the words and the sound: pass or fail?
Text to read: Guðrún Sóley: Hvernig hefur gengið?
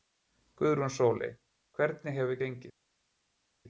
pass